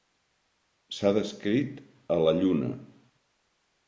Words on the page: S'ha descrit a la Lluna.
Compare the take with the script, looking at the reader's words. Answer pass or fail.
pass